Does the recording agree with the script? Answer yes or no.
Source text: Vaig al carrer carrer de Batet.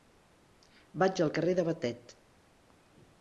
no